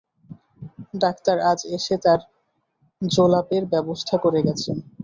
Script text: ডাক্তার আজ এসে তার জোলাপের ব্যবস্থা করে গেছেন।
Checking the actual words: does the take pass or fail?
pass